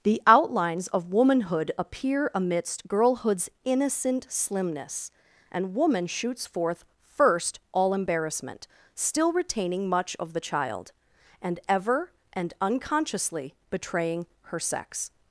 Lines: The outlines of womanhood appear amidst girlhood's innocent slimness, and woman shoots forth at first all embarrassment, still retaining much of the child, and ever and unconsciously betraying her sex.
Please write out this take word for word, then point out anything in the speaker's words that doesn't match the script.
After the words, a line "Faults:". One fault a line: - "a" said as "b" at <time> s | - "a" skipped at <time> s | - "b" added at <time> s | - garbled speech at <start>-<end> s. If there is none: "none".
The outlines of womanhood appear amidst girlhood's innocent slimness, and woman shoots forth first all embarrassment, still retaining much of the child, and ever and unconsciously betraying her sex.
Faults:
- "at" skipped at 6.8 s